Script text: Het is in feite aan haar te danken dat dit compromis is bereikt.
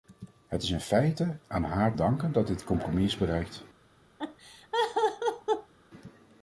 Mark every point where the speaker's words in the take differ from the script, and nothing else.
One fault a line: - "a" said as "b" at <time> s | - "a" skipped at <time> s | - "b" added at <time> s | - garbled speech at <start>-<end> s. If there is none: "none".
- "te" skipped at 1.9 s